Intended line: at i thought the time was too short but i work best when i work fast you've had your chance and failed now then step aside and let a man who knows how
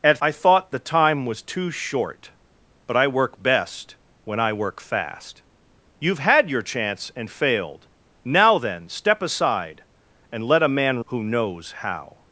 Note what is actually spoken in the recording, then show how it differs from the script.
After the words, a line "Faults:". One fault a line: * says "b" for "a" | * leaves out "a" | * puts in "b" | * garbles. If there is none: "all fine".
at i thought the time was too short but i work best when i work fast you've had your chance and failed now then step aside and let a man who knows how
Faults:
all fine